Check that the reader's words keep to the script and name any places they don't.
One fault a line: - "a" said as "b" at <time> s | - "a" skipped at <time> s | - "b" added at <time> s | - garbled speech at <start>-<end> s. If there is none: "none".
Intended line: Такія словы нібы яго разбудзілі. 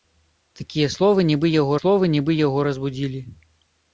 - "словы нібы яго" added at 1.8 s